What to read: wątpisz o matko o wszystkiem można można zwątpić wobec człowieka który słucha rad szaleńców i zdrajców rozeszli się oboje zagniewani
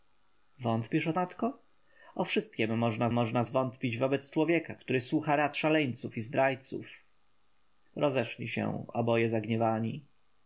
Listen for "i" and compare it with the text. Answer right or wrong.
right